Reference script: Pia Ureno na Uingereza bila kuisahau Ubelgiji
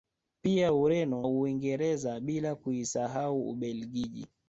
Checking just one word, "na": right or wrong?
wrong